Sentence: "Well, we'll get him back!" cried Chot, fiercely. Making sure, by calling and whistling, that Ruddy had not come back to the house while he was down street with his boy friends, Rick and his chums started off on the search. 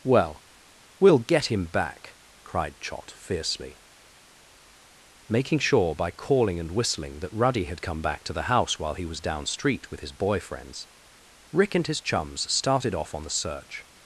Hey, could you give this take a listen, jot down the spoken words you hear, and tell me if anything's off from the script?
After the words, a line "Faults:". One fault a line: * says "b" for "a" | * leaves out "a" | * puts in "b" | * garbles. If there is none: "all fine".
"Well, we'll get him back!" cried Chot, fiercely. Making sure, by calling and whistling, that Ruddy had come back to the house while he was down street with his boy friends, Rick and his chums started off on the search.
Faults:
* leaves out "not"